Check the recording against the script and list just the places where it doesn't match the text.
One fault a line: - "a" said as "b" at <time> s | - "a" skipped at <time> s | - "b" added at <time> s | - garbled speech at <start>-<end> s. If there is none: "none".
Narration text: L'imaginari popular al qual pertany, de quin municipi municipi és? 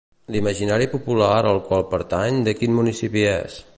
- "municipi" skipped at 3.3 s